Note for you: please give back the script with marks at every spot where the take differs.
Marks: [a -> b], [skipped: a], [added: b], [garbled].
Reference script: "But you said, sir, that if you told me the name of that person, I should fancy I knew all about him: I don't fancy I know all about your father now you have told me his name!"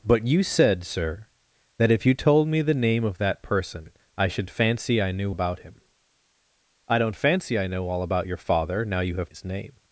"But you said, sir, that if you told me the name of that person, I should fancy I knew [skipped: all] about him: I don't fancy I know all about your father now you have [skipped: told me] his name!"